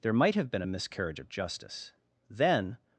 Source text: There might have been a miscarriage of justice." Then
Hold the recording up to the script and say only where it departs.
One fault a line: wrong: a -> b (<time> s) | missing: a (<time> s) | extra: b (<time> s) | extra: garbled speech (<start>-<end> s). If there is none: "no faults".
no faults